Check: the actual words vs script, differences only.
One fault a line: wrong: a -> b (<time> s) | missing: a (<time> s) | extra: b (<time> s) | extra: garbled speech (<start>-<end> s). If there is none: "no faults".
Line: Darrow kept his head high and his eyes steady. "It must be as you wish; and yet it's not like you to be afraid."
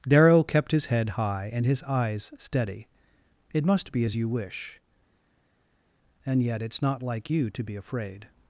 no faults